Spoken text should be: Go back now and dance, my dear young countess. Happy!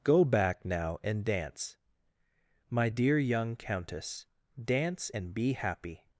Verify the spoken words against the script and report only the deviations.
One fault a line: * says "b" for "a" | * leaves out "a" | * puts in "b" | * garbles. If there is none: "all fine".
* puts in "Dance and be"